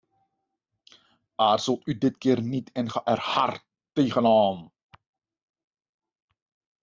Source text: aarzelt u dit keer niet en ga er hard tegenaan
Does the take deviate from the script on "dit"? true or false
false